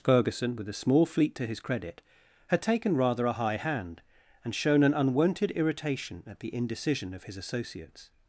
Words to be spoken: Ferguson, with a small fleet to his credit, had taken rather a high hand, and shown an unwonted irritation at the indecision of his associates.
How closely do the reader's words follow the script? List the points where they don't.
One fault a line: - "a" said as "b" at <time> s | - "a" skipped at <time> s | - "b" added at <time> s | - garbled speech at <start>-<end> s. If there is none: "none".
none